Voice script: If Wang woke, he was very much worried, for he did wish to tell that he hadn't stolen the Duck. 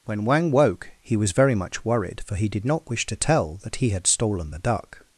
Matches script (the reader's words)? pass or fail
fail